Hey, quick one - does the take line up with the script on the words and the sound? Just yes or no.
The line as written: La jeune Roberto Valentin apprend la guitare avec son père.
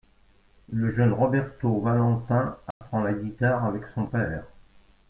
no